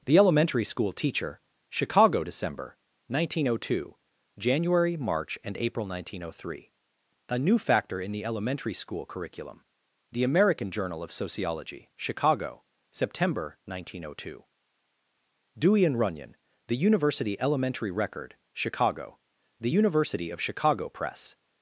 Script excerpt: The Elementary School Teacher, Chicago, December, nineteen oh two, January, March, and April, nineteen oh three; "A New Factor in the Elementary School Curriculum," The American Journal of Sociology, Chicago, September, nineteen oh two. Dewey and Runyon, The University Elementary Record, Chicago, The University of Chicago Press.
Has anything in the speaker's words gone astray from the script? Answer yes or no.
no